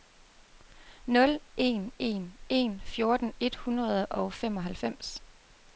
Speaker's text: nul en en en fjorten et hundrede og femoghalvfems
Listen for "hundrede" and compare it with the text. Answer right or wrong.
right